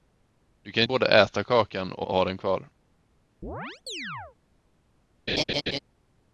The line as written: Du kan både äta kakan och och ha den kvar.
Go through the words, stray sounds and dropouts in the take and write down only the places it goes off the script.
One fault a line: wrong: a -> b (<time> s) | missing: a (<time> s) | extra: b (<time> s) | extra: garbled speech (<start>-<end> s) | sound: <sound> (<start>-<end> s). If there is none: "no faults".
sound: chirp (3.4-4.4 s)
sound: laugh (5.3-5.8 s)